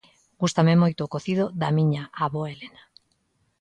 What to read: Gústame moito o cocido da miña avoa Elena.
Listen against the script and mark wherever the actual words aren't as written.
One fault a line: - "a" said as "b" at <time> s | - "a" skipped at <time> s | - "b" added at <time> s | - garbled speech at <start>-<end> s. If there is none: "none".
none